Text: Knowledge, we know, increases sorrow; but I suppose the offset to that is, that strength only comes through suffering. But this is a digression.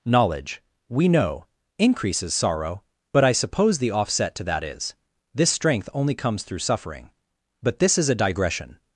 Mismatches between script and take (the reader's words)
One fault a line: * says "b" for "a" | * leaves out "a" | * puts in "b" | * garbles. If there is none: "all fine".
* says "this" for "that"